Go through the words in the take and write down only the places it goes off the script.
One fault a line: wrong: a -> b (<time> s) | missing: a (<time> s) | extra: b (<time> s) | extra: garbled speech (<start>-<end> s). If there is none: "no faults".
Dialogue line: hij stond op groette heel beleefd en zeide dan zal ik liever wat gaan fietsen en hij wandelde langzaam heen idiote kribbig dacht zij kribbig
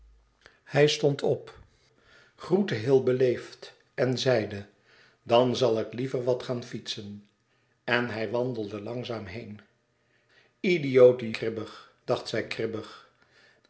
no faults